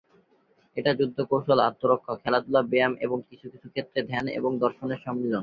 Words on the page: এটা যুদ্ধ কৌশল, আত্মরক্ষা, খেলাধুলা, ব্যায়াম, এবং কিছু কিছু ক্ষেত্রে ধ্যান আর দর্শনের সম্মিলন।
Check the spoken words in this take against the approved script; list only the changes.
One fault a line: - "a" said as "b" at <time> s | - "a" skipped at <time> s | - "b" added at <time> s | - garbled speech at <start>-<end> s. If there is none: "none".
- "আর" said as "এবং" at 4.4 s